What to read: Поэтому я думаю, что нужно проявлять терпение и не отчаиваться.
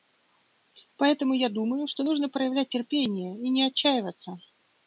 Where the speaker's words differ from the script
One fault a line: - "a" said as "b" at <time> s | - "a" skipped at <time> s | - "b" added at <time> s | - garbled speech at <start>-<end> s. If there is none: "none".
none